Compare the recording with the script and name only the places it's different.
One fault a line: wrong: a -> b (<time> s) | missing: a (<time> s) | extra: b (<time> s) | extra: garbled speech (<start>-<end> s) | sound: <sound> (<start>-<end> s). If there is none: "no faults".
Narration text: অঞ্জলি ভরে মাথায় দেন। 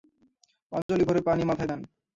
sound: dropout (0.8-0.9 s)
extra: পানি (1.3 s)